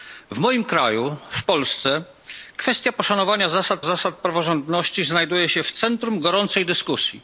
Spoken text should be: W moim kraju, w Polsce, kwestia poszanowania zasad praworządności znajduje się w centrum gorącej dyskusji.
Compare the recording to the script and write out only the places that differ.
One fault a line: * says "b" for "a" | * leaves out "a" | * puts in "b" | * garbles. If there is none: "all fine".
* puts in "zasad"